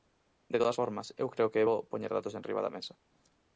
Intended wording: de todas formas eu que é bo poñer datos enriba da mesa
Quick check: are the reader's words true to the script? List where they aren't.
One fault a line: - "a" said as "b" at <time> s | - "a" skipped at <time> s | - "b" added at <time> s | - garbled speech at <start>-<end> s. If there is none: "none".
- "creo" added at 1.3 s